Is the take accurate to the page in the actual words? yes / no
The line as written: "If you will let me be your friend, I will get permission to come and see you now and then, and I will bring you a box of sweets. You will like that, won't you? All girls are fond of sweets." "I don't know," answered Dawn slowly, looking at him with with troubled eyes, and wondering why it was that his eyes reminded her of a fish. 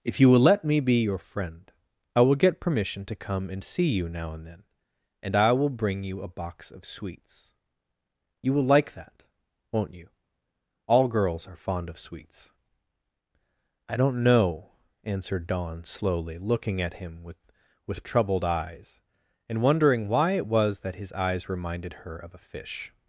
yes